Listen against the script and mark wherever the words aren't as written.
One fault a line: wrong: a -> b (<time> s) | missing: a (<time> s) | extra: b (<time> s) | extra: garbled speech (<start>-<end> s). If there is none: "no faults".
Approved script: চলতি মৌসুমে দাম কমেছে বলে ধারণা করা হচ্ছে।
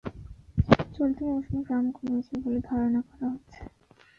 no faults